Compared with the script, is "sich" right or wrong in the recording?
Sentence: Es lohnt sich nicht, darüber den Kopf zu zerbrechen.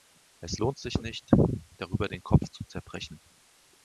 right